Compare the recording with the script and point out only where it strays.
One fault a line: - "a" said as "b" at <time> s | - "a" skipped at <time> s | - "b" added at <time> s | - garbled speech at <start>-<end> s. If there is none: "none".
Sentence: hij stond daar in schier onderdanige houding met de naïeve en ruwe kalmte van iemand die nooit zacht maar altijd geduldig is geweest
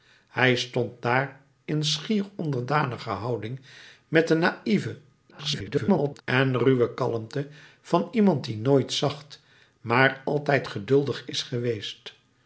- garbled speech at 5.3-6.2 s